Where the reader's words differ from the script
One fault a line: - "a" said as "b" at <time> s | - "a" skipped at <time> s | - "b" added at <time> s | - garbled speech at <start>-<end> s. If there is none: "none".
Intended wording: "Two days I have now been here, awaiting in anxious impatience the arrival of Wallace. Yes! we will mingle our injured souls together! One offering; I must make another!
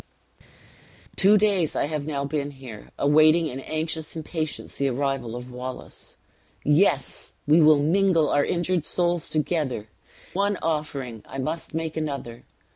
none